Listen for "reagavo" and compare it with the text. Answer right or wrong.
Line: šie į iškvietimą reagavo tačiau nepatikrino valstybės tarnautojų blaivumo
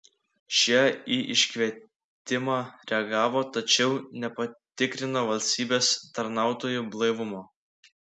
right